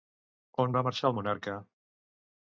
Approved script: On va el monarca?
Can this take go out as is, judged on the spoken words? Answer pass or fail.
fail